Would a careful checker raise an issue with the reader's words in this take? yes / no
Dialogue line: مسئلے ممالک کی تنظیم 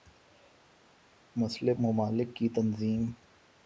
no